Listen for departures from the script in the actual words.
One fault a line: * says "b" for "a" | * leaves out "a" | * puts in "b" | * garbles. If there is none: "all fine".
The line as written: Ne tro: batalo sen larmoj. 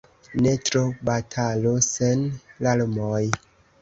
all fine